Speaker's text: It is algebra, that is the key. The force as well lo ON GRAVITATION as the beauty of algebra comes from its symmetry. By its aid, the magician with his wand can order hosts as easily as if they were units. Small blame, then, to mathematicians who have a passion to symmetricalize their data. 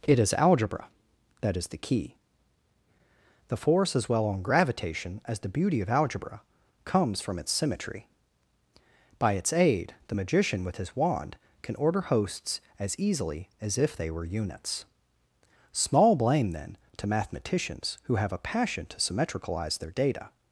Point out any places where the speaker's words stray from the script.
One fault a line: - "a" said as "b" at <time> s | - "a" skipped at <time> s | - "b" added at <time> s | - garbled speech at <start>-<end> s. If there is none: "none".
- "lo" skipped at 4.2 s